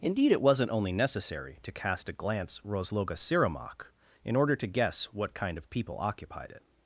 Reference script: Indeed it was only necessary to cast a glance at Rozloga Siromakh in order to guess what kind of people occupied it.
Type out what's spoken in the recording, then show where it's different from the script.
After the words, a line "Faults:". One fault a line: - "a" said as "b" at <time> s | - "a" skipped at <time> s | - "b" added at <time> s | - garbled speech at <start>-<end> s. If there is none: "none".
Indeed it wasn't only necessary to cast a glance Rozloga Siromakh in order to guess what kind of people occupied it.
Faults:
- "was" said as "wasn't" at 0.4 s
- "at" skipped at 2.6 s